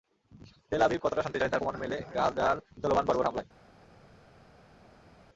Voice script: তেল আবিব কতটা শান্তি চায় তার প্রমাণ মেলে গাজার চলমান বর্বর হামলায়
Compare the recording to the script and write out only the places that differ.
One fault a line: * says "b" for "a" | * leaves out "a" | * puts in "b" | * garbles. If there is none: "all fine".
all fine